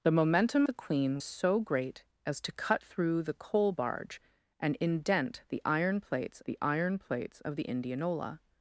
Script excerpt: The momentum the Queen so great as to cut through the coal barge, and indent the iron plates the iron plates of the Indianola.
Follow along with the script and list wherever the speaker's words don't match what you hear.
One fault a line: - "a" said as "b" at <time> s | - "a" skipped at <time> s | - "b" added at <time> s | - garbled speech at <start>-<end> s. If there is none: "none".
none